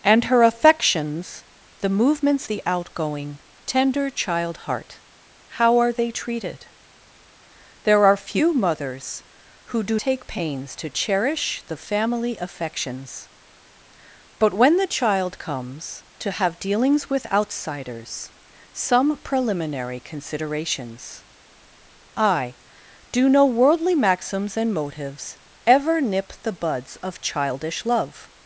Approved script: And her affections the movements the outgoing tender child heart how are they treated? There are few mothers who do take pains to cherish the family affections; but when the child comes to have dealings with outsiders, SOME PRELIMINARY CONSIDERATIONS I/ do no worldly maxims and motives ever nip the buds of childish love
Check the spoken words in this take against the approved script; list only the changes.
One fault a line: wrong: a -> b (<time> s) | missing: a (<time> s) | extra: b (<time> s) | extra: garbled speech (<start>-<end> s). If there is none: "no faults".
no faults